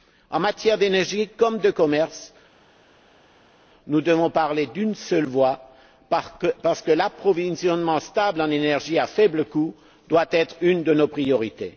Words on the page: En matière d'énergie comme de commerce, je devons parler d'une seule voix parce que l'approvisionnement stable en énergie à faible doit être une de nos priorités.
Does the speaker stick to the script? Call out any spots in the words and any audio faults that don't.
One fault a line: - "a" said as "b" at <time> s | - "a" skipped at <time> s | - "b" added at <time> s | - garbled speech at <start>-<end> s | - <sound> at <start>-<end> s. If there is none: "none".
- "je" said as "nous" at 3.9 s
- "coût" added at 9.4 s